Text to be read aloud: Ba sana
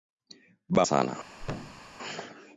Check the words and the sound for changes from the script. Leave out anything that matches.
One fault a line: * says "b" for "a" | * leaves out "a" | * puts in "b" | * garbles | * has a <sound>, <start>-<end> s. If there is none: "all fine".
* has a thud, 1.4-1.9 s